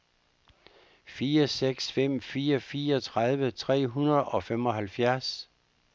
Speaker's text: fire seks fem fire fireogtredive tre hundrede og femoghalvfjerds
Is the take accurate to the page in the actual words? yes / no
yes